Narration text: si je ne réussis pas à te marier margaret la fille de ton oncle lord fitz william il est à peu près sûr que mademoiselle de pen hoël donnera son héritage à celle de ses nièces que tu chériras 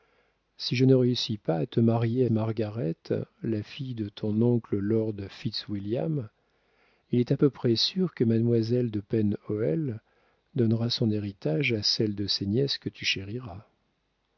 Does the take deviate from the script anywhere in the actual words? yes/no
no